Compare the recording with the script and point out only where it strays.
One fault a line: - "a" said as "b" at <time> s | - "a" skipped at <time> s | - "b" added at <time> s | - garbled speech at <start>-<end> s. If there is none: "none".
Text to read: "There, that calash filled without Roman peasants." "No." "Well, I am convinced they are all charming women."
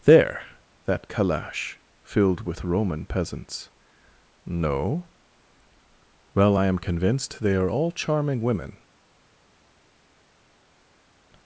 - "without" said as "with" at 2.4 s